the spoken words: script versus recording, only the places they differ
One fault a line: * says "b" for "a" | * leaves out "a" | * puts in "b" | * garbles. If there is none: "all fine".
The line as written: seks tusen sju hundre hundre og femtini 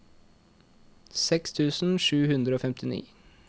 * leaves out "hundre"